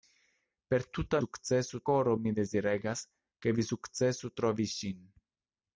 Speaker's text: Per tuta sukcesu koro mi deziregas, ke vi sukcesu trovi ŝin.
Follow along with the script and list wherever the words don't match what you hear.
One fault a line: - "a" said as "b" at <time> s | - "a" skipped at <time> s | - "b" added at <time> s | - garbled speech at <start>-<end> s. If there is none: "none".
none